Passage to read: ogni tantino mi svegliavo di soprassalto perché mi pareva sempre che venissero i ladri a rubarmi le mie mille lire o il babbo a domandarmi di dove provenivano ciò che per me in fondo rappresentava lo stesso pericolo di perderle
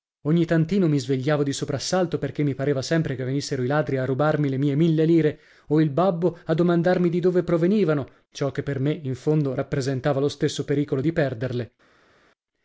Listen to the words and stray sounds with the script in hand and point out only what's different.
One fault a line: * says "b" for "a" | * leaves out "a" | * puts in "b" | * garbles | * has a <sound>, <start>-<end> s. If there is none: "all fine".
all fine